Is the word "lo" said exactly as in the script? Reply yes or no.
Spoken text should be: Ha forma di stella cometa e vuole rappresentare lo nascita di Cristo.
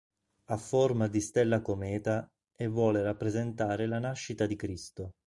no